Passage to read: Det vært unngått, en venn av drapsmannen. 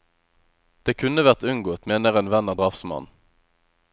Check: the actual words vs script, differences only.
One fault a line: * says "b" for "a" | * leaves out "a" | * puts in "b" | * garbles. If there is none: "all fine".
* puts in "kunne"
* puts in "mener"